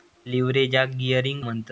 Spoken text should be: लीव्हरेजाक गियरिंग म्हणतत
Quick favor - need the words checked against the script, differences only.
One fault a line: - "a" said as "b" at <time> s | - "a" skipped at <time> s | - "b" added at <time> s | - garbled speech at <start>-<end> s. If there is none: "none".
none